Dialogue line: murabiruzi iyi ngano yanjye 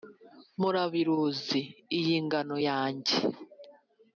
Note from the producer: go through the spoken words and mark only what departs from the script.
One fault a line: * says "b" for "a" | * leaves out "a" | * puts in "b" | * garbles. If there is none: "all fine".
all fine